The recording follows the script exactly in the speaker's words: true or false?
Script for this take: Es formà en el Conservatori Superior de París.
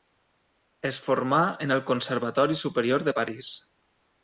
true